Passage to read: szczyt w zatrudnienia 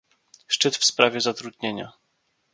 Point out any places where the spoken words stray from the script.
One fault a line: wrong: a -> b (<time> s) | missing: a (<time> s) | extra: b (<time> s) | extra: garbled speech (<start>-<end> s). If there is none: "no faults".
extra: sprawie (0.8 s)